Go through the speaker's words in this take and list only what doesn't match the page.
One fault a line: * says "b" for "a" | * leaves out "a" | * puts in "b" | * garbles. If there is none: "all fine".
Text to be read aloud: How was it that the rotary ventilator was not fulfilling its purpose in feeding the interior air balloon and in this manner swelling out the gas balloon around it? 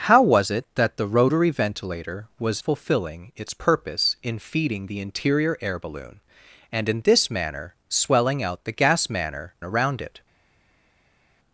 * leaves out "not"
* says "manner" for "balloon"